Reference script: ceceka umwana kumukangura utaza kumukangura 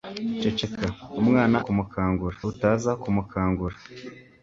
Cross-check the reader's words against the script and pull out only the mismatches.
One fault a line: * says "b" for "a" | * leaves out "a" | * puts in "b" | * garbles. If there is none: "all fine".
all fine